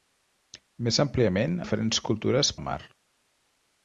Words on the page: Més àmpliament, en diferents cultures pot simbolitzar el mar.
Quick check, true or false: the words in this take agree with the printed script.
false